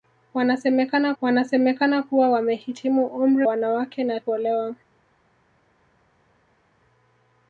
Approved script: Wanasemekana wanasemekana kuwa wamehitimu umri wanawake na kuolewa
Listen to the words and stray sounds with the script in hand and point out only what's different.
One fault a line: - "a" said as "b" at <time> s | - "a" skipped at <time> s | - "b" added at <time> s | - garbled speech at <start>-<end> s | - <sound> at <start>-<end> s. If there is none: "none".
none